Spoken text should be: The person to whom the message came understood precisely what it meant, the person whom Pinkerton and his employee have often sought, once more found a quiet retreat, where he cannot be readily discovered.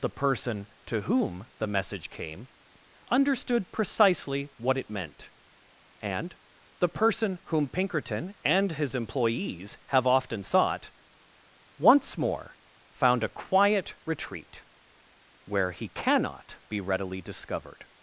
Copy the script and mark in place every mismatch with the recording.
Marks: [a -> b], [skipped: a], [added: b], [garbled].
The person to whom the message came understood precisely what it meant, [added: and] the person whom Pinkerton and his [employee -> employees] have often sought, once more found a quiet retreat, where he cannot be readily discovered.